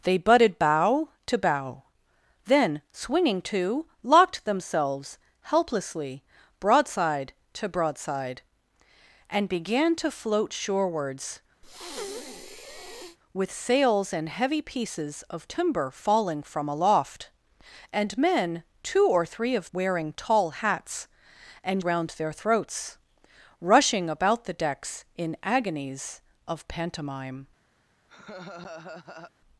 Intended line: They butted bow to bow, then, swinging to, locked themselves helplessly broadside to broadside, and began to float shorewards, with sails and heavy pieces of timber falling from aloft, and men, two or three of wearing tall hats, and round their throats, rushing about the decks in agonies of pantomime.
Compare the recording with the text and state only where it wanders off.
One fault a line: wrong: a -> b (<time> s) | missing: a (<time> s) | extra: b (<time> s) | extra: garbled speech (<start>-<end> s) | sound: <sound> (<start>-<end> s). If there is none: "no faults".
sound: breath (11.6-13.2 s)
sound: laugh (28.1-29.3 s)